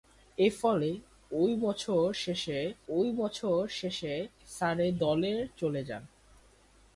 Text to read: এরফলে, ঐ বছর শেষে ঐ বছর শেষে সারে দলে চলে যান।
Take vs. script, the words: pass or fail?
pass